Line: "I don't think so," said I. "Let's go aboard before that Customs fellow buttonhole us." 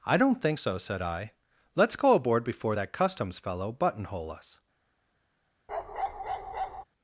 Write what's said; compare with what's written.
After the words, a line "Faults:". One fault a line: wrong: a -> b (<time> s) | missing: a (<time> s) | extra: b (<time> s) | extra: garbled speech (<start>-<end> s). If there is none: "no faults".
"I don't think so," said I. "Let's go aboard before that Customs fellow buttonhole us."
Faults:
no faults